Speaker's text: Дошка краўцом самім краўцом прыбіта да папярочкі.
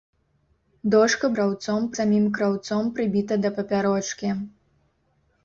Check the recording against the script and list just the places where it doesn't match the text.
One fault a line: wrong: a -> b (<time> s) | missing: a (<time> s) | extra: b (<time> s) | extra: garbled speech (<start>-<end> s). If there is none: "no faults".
no faults